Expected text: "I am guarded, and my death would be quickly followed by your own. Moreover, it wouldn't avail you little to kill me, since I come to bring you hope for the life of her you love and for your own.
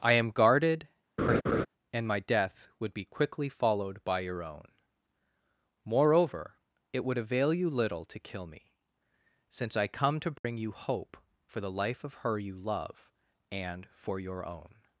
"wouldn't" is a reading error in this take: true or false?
true